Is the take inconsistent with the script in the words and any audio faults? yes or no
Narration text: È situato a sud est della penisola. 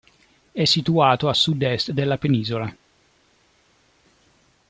no